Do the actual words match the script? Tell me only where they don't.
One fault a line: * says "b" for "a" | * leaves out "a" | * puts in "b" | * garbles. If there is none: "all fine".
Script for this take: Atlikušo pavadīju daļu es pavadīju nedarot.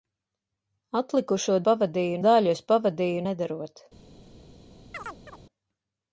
all fine